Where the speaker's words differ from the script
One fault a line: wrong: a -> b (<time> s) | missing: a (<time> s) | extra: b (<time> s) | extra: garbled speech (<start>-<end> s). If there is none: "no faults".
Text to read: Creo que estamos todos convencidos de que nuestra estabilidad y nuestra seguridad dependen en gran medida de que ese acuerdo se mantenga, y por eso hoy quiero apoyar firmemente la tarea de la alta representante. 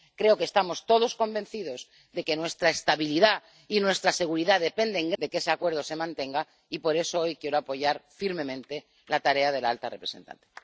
missing: gran medida (5.1 s)